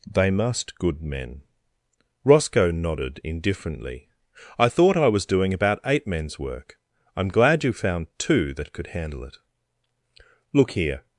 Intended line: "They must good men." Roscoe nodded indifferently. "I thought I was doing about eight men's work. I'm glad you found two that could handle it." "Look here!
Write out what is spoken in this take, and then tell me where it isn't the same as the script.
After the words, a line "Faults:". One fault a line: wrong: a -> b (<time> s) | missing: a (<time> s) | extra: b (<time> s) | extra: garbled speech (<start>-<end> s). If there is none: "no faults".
"They must good men." Roscoe nodded indifferently. "I thought I was doing about eight men's work. I'm glad you found two that could handle it." "Look here!
Faults:
no faults